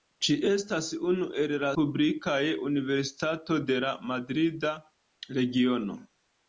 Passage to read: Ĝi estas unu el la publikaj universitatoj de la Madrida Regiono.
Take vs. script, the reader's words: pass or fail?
pass